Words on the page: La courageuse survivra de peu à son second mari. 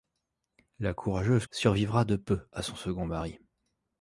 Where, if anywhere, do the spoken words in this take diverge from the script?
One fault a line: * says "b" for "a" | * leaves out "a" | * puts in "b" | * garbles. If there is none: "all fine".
all fine